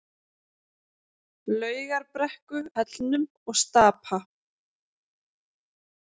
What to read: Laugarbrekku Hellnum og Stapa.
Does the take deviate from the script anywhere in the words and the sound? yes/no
no